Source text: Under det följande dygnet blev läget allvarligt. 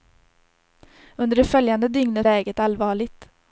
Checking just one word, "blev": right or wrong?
wrong